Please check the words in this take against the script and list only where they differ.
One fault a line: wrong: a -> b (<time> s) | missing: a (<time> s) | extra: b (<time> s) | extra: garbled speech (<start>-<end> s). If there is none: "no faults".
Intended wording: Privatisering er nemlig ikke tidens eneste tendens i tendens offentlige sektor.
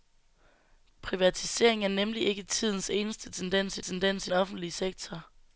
no faults